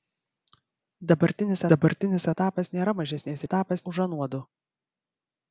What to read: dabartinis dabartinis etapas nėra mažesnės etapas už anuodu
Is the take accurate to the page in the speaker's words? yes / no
yes